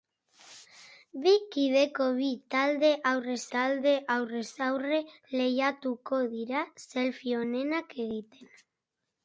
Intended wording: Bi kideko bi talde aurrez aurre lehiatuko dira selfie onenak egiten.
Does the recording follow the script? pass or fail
fail